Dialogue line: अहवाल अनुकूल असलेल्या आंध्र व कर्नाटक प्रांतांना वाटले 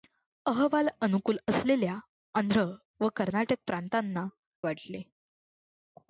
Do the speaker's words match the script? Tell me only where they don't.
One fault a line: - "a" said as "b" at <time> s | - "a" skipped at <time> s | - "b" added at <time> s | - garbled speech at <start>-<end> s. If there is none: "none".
none